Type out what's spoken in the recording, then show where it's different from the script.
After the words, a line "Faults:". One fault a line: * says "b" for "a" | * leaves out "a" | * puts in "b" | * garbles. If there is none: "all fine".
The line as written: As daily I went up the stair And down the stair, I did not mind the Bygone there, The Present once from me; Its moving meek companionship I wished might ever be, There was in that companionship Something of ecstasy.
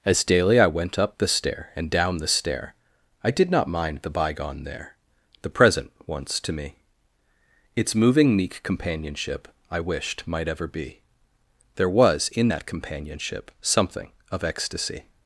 As daily I went up the stair And down the stair, I did not mind the Bygone there, The Present once to me; Its moving meek companionship I wished might ever be, There was in that companionship Something of ecstasy.
Faults:
* says "to" for "from"